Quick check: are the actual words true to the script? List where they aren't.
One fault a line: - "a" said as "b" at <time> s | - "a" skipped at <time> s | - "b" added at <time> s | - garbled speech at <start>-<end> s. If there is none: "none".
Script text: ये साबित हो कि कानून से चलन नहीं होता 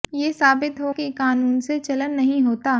none